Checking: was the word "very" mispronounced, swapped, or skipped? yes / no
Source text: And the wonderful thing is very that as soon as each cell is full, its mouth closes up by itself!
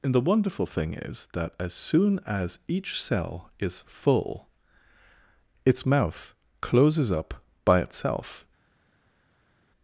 yes